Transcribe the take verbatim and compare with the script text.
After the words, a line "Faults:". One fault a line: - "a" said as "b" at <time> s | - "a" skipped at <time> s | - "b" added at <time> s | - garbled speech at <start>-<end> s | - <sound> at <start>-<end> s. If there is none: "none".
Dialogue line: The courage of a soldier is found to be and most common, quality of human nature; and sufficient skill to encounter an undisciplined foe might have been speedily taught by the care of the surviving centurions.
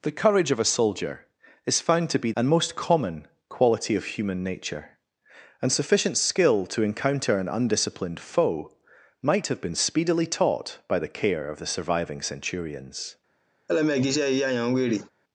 The courage of a soldier is found to be and most common, quality of human nature; and sufficient skill to encounter an undisciplined foe might have been speedily taught by the care of the surviving centurions.
Faults:
- laugh at 13.7-15.1 s